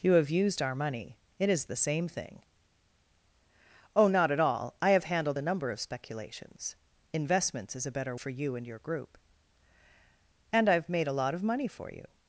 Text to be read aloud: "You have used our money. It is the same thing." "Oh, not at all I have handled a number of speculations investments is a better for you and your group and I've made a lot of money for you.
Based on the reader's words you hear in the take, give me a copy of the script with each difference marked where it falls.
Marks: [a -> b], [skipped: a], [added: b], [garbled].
"You have used our money. It is the same thing." "Oh, not at all I have handled a number of speculations investments is a better for you and your group and I've made a lot of money for you.